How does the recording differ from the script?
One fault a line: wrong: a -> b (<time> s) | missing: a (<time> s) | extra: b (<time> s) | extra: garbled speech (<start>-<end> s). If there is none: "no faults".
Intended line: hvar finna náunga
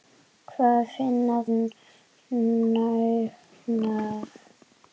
no faults